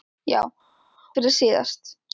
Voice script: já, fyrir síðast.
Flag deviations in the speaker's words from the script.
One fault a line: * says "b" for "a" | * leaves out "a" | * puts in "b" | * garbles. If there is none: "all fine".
all fine